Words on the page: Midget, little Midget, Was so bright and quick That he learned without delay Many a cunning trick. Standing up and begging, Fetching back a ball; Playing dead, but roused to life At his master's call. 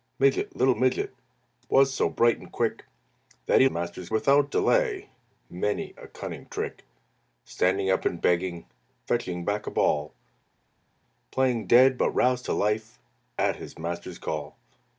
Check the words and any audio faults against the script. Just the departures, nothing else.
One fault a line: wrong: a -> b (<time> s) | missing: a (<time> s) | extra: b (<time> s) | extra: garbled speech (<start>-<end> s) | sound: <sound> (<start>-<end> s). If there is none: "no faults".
wrong: learned -> master's (3.7 s)